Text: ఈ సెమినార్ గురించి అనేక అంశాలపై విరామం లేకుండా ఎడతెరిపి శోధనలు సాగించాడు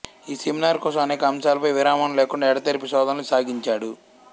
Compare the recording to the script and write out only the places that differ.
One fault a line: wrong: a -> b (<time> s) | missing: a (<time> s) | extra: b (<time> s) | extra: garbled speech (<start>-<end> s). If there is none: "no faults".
wrong: గురించి -> కోసం (0.8 s)